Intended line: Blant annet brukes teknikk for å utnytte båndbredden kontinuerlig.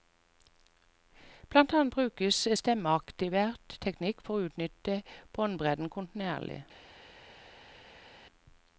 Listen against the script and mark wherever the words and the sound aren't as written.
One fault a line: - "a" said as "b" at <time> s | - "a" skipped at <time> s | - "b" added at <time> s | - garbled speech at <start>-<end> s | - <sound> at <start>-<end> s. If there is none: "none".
- "stemmeaktivert" added at 2.6 s